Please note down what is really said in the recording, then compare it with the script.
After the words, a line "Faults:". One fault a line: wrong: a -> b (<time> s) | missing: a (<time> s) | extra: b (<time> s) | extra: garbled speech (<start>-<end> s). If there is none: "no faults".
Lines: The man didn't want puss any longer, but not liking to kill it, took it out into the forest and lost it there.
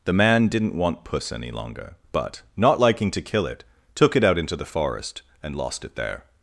The man didn't want puss any longer, but not liking to kill it, took it out into the forest and lost it there.
Faults:
no faults